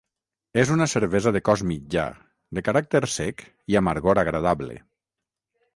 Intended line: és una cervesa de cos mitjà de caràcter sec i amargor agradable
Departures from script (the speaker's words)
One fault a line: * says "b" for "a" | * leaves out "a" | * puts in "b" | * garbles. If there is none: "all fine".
all fine